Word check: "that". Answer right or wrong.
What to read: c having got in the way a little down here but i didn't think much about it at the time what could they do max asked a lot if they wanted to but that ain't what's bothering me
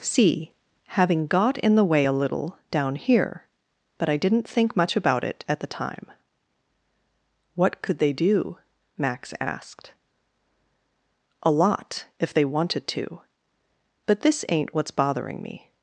wrong